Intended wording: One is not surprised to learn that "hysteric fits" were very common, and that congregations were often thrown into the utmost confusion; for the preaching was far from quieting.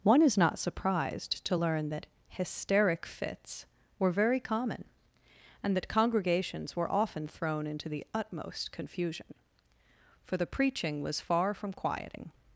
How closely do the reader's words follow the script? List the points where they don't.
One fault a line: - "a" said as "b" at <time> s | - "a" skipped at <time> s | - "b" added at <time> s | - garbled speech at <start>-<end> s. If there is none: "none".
none